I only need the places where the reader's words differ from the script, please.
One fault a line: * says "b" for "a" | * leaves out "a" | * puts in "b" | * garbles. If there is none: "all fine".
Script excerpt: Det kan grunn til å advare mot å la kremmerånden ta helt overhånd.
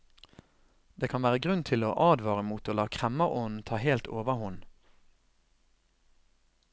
* puts in "være"